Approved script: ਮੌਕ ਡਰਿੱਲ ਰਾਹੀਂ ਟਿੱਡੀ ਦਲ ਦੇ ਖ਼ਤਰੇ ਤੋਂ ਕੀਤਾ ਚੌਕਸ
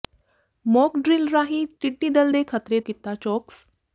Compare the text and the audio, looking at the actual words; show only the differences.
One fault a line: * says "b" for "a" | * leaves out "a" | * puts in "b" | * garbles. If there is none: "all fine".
* leaves out "ਤੋਂ"